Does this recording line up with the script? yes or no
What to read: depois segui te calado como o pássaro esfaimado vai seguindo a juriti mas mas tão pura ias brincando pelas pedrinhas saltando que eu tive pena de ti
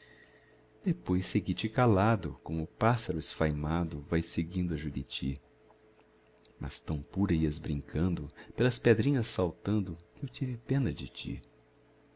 no